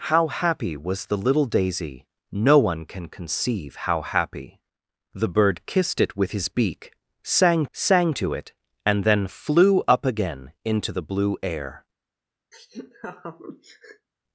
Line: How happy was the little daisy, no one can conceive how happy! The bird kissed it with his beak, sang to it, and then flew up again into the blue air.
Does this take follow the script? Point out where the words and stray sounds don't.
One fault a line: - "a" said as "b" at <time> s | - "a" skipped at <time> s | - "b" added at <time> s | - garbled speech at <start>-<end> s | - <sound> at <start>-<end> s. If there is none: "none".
- "sang" added at 7.7 s
- laugh at 12.5-14.1 s